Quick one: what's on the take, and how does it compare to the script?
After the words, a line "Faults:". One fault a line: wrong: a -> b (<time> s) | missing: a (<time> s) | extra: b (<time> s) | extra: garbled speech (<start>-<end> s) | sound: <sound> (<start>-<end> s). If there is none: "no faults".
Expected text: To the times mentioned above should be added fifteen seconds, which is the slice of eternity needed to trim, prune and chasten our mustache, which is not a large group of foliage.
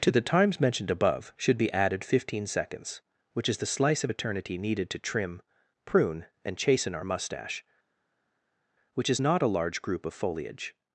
To the times mentioned above should be added fifteen seconds, which is the slice of eternity needed to trim, prune and chasten our mustache, which is not a large group of foliage.
Faults:
no faults